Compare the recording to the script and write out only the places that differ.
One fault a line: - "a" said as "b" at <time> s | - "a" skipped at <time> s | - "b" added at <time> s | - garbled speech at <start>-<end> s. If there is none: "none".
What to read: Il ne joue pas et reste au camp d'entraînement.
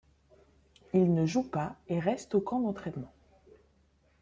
none